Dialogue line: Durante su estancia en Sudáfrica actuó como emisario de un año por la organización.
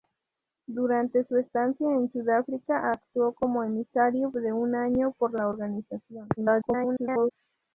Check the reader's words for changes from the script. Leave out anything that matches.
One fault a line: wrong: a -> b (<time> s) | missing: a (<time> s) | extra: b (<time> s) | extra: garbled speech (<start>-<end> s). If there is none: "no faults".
extra: garbled speech (6.4-7.3 s)